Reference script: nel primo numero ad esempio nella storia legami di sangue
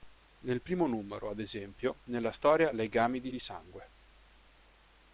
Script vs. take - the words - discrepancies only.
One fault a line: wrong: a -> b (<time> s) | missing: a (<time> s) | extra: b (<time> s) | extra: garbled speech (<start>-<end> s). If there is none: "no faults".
extra: di (3.3 s)